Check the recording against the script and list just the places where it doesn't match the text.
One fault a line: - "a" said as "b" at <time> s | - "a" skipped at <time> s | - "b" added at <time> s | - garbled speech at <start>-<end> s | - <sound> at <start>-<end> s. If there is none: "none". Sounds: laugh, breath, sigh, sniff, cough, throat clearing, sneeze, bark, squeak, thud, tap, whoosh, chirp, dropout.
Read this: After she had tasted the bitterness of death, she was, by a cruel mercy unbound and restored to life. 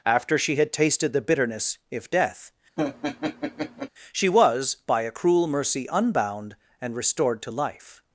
- "of" said as "if" at 1.9 s
- laugh at 2.8-3.9 s